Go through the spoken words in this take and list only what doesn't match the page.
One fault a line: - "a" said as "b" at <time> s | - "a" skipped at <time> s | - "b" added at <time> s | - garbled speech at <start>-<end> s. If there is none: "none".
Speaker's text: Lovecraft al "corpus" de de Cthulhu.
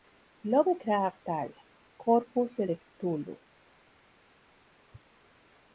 none